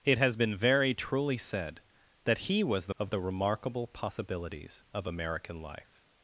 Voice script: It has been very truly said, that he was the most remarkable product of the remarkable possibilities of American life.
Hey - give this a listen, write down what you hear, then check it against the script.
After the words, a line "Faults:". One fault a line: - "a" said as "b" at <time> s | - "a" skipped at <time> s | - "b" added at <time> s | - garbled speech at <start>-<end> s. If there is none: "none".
It has been very truly said, that he was the of the remarkable possibilities of American life.
Faults:
- "most remarkable product" skipped at 3.0 s